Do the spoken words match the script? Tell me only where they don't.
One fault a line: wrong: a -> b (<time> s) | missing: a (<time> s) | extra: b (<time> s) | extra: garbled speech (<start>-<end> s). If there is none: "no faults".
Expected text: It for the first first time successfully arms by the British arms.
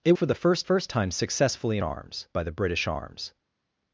no faults